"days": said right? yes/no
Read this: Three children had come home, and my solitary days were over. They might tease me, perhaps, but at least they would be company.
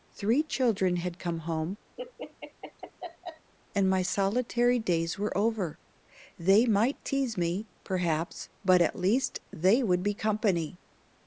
yes